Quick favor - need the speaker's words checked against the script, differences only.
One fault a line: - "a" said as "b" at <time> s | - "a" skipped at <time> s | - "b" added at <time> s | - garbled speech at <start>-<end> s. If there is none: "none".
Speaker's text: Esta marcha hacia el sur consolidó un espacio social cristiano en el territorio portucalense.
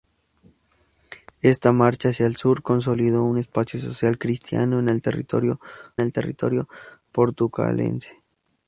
- "el territorio" added at 6.0 s